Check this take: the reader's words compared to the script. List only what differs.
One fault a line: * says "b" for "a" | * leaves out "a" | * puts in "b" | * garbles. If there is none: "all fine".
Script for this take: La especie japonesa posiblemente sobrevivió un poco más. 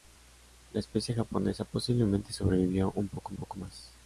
* puts in "poco"